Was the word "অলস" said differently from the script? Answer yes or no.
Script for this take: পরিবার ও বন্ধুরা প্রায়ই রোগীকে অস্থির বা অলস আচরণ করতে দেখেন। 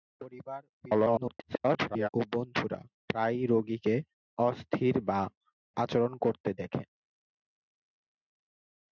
yes